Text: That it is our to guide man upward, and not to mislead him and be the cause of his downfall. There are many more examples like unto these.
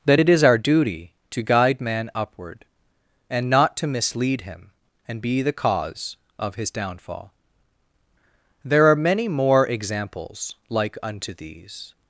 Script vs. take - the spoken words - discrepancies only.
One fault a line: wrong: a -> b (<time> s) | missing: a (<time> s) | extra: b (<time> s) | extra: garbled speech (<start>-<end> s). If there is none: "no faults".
extra: duty (0.6 s)